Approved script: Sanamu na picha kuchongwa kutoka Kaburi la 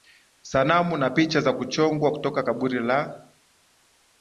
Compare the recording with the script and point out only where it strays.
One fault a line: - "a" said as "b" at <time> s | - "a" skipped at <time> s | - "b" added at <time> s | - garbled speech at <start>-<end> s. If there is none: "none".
- "za" added at 1.4 s